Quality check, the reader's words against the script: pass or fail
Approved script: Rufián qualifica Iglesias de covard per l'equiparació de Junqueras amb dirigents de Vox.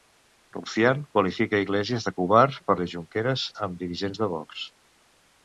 fail